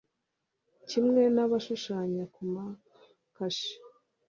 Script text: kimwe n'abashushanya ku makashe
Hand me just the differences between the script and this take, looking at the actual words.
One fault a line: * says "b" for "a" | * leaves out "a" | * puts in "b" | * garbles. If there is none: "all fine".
all fine